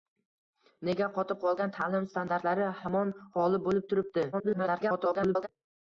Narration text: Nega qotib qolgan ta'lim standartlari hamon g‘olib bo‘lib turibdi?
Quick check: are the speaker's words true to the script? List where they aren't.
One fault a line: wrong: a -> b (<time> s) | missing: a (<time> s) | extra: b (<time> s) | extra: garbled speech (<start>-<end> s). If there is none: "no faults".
extra: garbled speech (4.3-5.5 s)